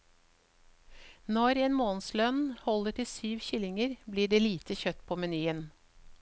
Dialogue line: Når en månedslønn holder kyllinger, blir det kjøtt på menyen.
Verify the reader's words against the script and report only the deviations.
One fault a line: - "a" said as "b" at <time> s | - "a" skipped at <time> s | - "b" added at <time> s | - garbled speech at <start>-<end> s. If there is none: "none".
- "til syv" added at 3.0 s
- "lite" added at 4.4 s